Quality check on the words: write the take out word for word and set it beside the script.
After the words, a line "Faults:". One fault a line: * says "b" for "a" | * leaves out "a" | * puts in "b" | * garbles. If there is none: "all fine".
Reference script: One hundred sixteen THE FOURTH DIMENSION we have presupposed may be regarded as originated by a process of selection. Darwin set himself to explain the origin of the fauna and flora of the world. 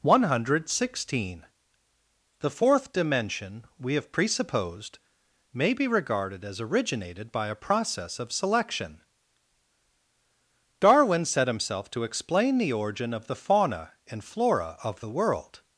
One hundred sixteen THE FOURTH DIMENSION we have presupposed may be regarded as originated by a process of selection. Darwin set himself to explain the origin of the fauna and flora of the world.
Faults:
all fine